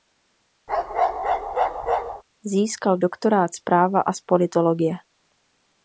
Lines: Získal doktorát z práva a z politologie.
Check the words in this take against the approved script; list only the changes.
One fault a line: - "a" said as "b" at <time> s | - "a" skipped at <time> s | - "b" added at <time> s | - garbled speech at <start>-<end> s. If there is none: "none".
none